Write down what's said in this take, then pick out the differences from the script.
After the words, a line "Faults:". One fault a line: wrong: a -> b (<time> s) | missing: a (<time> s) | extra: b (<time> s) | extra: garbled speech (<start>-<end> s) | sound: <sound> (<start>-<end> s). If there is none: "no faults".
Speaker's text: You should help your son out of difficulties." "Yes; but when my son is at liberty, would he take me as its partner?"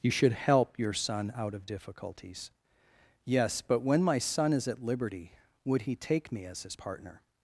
You should help your son out of difficulties." "Yes; but when my son is at liberty, would he take me as his partner?"
Faults:
wrong: its -> his (6.6 s)